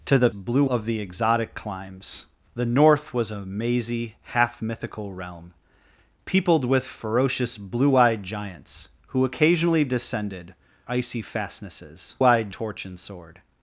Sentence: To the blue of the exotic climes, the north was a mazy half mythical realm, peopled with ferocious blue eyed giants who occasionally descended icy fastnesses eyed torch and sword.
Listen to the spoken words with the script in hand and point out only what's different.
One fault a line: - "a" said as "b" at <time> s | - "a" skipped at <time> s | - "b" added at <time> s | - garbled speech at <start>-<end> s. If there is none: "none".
none